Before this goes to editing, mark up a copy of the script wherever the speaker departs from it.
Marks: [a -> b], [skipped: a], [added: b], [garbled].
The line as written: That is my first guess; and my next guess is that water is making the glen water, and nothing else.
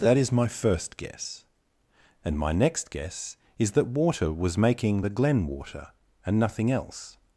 That is my first guess; and my next guess is that water [is -> was] making the glen water, and nothing else.